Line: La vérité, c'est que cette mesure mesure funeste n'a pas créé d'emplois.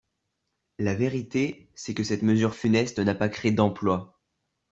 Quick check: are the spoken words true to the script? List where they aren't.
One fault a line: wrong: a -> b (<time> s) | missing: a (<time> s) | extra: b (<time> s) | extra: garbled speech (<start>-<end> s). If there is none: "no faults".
missing: mesure (2.5 s)